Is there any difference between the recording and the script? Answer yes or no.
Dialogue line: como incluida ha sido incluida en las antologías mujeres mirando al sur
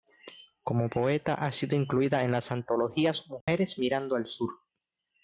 yes